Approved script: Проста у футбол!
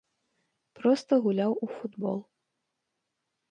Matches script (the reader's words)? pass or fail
fail